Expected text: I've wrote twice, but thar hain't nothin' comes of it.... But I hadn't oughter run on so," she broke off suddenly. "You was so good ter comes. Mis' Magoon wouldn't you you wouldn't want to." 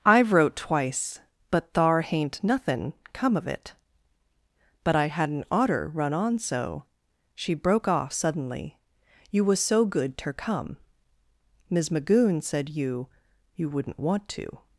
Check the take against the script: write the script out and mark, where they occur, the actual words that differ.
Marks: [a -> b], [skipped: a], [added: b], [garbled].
I've wrote twice, but thar hain't nothin' [comes -> come] of it.... But I hadn't oughter run on so," she broke off suddenly. "You was so good ter [comes. -> come] Mis' Magoon [wouldn't -> said] you you wouldn't want to."